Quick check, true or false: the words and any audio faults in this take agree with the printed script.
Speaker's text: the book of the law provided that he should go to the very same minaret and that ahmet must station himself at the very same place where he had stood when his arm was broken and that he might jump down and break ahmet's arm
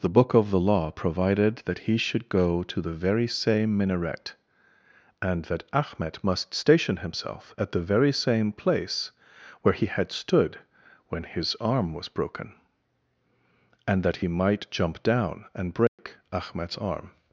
false